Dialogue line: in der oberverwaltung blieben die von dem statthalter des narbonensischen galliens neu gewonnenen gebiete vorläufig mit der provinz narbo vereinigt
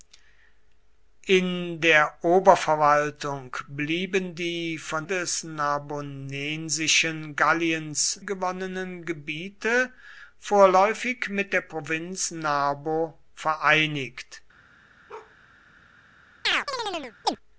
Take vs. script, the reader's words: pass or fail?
fail